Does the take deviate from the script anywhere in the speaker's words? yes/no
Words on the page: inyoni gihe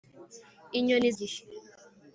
no